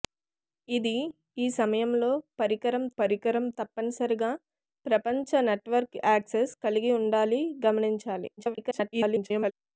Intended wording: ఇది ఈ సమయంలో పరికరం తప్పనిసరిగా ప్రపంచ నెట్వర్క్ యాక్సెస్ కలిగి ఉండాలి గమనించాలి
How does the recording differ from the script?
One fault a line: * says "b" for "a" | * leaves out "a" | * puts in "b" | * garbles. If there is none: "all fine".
* puts in "పరికరం"
* garbles